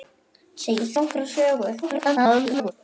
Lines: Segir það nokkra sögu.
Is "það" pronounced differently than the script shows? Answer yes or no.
yes